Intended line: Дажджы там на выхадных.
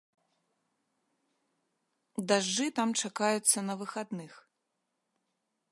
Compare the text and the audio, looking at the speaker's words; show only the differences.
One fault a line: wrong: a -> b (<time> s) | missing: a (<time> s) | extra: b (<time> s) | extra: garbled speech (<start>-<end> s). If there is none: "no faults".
extra: чакаюцца (3.0 s)